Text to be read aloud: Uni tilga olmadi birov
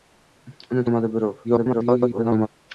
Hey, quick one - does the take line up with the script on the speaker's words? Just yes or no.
no